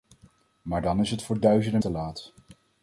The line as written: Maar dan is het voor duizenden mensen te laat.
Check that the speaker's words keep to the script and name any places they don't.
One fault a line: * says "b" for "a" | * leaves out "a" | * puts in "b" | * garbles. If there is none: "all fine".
* leaves out "mensen"